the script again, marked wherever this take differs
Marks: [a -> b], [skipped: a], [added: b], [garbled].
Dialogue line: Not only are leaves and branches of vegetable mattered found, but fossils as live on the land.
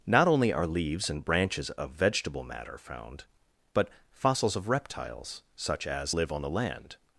Not only are leaves and branches of vegetable [mattered -> matter] found, but fossils [added: of reptiles such] as live on the land.